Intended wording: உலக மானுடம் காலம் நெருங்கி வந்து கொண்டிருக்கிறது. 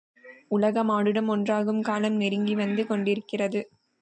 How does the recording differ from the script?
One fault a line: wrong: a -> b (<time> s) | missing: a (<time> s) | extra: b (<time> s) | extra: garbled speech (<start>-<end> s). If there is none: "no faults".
extra: ஒன்றாகும் (1.3 s)